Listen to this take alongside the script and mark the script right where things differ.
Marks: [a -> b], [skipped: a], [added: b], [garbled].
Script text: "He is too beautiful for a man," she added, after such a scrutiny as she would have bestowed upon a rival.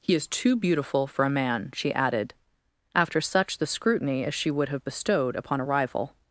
"He is too beautiful for a man," she added, after such [a -> the] scrutiny as she would have bestowed upon a rival.